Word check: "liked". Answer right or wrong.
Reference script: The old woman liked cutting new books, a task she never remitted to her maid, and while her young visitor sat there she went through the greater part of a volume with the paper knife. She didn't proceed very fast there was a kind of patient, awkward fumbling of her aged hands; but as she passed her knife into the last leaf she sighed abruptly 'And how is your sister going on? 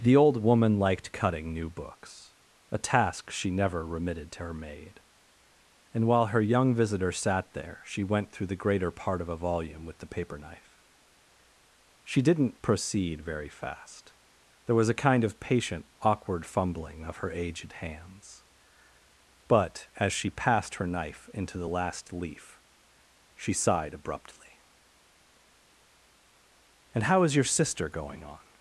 right